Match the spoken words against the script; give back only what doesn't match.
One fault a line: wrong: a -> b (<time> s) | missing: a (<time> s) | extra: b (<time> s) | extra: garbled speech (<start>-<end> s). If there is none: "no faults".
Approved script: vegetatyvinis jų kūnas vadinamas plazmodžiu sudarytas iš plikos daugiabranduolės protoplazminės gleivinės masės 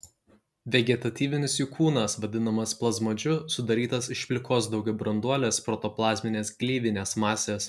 no faults